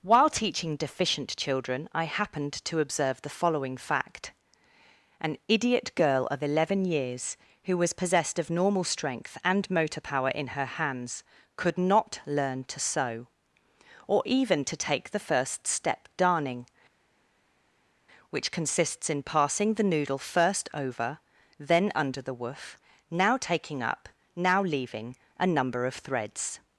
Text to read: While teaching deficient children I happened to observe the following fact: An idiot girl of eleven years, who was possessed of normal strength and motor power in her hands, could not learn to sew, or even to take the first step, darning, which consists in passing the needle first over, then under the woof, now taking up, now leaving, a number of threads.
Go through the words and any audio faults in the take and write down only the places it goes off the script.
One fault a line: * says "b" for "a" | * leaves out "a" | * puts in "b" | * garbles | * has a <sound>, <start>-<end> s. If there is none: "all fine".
* says "noodle" for "needle"